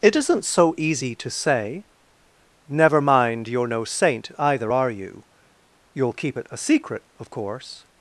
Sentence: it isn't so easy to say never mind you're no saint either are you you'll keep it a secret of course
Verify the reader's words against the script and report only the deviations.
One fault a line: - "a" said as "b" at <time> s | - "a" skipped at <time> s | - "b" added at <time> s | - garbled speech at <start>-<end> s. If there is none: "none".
none